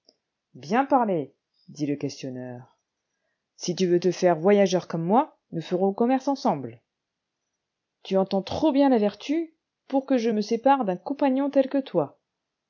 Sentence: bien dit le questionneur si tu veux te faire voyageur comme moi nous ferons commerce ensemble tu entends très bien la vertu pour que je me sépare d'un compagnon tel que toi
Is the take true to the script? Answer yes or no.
no